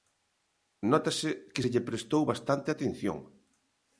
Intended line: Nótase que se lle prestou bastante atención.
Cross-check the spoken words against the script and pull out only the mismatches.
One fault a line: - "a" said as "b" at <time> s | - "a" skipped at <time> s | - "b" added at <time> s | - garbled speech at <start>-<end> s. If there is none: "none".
none